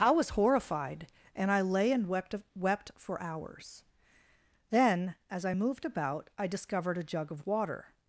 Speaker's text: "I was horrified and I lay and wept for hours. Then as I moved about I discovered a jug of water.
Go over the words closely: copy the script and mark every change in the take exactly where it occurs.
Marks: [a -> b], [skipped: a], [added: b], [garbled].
"I was horrified and I lay and wept [added: wept] for hours. Then as I moved about I discovered a jug of water.